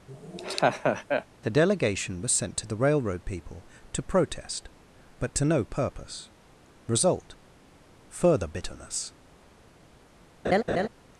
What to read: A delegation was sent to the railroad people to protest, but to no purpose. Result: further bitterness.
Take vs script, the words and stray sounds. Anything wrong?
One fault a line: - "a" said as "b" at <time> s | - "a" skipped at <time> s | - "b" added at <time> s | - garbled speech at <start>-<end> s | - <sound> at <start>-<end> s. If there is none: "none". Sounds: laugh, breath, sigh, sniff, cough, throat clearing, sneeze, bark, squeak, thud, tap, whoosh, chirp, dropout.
- laugh at 0.1-1.2 s
- "A" said as "The" at 1.4 s
- laugh at 10.4-10.9 s